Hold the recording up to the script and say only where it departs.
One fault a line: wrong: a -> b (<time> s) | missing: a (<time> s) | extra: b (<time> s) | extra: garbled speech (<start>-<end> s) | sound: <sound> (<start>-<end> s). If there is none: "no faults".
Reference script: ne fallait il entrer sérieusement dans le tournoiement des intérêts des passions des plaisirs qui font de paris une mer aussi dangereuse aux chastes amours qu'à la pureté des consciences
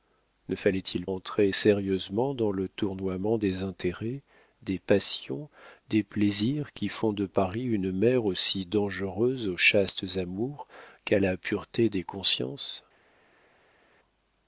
no faults